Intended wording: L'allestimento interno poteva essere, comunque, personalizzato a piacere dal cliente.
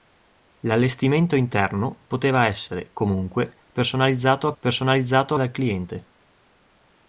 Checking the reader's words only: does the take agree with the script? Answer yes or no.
no